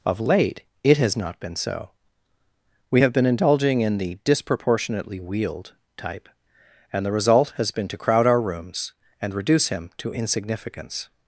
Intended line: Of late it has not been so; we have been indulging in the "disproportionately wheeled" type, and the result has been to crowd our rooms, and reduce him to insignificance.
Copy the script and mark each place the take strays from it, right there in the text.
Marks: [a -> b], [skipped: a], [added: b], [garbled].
Of late it has not been so; we have been indulging in the "disproportionately wheeled" type, and the result has been to crowd our rooms, and reduce him to insignificance.